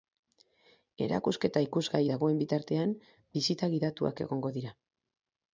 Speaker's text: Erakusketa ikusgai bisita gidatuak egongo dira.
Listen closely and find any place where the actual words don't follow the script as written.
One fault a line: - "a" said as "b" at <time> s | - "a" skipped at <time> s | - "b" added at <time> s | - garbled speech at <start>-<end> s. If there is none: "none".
- "dagoen bitartean" added at 2.1 s